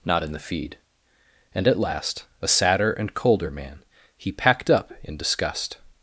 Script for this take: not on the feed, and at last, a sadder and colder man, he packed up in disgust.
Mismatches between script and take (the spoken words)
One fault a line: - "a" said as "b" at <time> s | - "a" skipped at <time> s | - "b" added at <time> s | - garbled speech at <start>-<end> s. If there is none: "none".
- "on" said as "in" at 0.2 s